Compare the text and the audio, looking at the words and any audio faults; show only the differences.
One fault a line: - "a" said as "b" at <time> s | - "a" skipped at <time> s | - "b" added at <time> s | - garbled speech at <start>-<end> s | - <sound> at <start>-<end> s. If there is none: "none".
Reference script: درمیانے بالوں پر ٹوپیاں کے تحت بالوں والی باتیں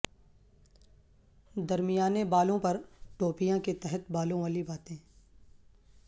none